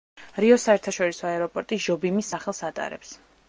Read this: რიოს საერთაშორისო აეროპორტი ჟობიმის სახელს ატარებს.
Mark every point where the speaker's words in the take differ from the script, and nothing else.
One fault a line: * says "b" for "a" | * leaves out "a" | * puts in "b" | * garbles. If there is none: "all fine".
all fine